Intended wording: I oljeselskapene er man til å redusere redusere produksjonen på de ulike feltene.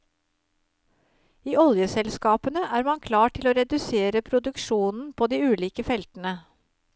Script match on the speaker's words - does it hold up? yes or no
no